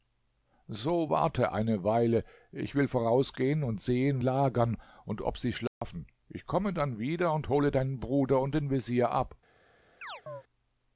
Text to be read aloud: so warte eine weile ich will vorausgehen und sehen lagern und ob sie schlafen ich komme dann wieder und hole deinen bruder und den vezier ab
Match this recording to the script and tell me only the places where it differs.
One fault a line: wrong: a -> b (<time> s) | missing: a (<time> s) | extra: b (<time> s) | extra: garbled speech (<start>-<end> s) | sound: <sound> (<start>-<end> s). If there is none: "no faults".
sound: dropout (5.7-5.8 s)
sound: chirp (10.0-10.4 s)